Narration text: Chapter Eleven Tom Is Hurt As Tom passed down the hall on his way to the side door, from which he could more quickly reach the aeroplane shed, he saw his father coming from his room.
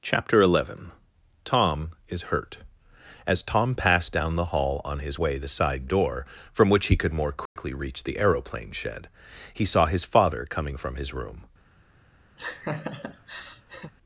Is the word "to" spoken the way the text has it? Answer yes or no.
no